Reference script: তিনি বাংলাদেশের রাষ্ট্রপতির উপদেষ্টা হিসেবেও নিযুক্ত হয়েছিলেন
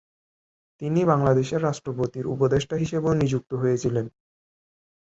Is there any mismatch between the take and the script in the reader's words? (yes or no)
no